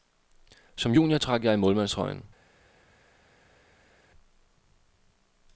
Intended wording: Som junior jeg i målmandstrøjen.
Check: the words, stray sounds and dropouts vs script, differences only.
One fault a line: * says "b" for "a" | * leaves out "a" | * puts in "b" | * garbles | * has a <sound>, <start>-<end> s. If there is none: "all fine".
* puts in "trak"